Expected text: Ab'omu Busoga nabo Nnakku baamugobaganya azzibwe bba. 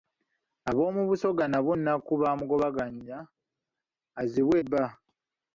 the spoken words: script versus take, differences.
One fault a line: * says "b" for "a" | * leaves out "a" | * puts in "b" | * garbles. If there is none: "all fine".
all fine